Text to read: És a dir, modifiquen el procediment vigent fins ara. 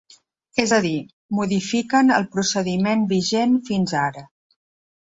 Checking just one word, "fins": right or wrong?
right